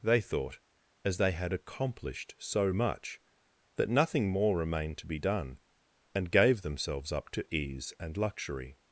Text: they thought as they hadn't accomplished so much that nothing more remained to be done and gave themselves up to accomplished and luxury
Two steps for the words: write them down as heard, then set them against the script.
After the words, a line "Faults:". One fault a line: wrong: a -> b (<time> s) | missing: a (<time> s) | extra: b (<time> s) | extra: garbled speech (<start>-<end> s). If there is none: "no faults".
they thought as they had accomplished so much that nothing more remained to be done and gave themselves up to ease and luxury
Faults:
wrong: hadn't -> had (1.3 s)
wrong: accomplished -> ease (7.5 s)